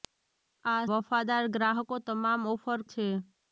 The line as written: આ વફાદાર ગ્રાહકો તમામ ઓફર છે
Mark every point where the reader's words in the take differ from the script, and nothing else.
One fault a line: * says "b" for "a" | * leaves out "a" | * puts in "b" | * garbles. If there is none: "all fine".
all fine